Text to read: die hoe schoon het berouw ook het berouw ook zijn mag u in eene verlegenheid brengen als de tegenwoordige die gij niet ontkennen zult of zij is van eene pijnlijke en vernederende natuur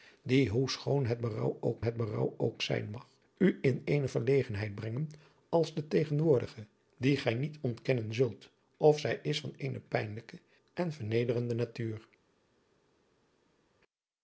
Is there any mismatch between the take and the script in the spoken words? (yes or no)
no